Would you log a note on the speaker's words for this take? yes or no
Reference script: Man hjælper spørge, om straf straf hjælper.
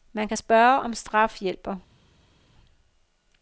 yes